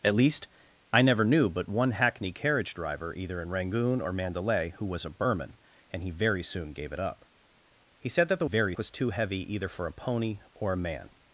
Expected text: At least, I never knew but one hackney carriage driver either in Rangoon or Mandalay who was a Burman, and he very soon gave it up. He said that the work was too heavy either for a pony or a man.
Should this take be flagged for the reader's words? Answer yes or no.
yes